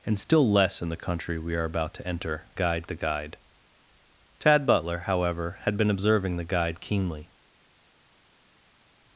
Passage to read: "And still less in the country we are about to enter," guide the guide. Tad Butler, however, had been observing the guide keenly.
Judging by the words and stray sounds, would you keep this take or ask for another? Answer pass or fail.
pass